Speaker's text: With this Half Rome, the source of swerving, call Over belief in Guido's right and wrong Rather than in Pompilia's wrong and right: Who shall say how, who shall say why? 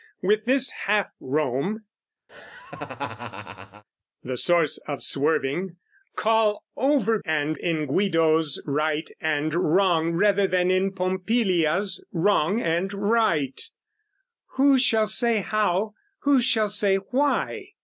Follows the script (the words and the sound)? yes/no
no